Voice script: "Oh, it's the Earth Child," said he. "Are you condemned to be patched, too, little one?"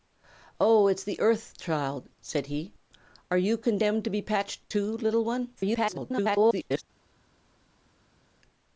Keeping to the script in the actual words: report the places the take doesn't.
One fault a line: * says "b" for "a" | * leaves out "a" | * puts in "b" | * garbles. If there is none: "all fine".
* garbles